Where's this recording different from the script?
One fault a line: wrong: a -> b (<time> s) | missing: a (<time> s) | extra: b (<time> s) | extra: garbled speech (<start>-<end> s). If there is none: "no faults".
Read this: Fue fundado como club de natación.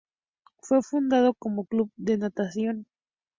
no faults